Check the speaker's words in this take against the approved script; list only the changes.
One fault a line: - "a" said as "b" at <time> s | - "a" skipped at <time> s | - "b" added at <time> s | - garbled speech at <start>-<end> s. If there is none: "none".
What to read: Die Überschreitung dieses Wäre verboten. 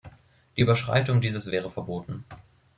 none